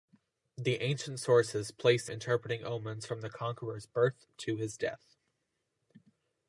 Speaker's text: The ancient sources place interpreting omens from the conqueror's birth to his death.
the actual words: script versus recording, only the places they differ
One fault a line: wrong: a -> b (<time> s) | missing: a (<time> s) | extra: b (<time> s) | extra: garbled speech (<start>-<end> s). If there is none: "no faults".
no faults